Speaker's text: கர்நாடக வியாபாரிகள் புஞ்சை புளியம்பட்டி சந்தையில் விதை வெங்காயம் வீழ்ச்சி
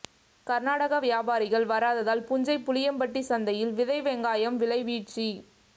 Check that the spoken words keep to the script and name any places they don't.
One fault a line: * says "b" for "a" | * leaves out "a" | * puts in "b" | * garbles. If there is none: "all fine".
* puts in "வராததால்"
* puts in "விலை"